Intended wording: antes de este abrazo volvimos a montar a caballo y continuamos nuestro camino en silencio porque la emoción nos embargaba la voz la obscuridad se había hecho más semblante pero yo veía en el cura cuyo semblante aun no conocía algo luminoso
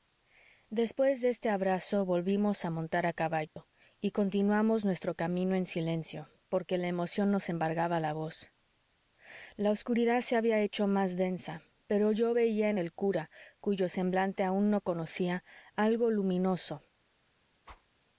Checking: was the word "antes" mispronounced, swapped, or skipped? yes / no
yes